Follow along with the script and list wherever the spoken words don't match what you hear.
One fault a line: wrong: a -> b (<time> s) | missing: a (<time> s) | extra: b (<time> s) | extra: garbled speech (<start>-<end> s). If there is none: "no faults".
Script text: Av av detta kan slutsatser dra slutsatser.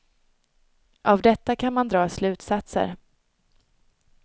missing: av (1.2 s)
wrong: slutsatser -> man (1.7 s)